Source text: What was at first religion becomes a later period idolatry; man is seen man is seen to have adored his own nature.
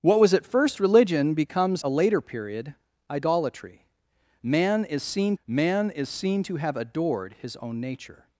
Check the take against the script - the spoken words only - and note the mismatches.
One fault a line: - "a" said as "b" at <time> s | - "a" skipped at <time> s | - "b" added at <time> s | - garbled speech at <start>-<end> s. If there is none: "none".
none